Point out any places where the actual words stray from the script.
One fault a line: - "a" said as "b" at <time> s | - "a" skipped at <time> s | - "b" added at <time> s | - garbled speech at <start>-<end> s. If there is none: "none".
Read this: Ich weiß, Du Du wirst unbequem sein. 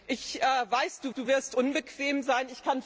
none